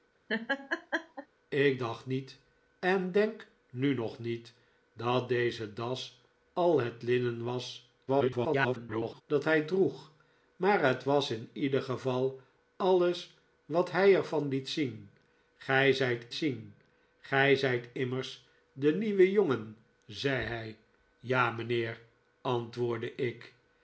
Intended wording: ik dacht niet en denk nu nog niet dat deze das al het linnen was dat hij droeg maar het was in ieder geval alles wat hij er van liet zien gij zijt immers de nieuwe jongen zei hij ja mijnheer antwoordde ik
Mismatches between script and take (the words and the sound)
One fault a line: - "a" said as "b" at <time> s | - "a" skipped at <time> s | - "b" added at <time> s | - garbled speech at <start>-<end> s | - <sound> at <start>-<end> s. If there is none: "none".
- laugh at 0.3-1.3 s
- garbled speech at 8.1-9.2 s
- "zien gij zijt" added at 16.3 s